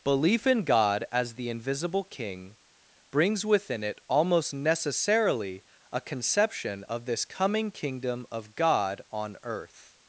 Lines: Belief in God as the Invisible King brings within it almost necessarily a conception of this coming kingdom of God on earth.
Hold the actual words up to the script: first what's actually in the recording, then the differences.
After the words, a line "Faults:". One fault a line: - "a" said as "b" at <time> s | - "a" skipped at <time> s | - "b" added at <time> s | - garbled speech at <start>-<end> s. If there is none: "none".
Belief in God as the Invisible King brings within it almost necessarily a conception of this coming kingdom of God on earth.
Faults:
none